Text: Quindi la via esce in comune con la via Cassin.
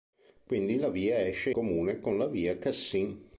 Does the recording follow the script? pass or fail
fail